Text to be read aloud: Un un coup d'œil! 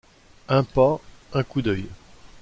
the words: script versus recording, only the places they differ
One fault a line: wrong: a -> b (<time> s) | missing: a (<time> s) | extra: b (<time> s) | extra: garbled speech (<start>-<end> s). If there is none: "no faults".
extra: pas (0.6 s)